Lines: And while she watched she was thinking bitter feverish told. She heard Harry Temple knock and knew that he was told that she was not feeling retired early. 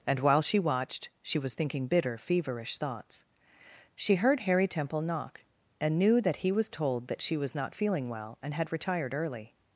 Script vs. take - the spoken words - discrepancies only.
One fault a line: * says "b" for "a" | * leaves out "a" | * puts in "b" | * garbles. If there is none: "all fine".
* says "thoughts" for "told"
* puts in "well and had"